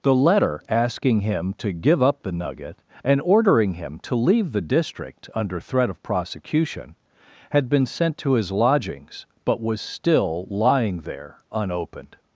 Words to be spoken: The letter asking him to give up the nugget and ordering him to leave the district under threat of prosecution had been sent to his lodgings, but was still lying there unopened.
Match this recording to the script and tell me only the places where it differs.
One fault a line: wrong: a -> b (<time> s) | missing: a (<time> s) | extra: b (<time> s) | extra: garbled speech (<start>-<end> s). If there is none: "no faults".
no faults